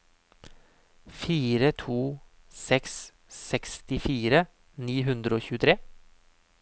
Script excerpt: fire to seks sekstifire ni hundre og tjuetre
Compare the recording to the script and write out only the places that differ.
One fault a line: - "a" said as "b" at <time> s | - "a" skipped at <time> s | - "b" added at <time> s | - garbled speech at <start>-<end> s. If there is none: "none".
none